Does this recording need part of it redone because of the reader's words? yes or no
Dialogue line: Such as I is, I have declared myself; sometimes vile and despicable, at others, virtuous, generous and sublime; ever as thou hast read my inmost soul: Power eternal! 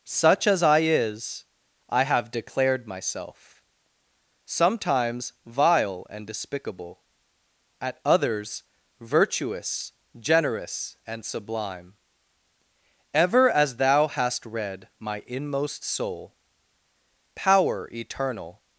no